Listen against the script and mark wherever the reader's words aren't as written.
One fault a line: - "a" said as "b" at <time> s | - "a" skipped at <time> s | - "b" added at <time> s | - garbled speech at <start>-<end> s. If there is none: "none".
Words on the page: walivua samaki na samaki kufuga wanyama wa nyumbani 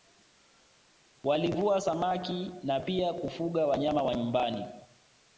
- "samaki" said as "pia" at 2.8 s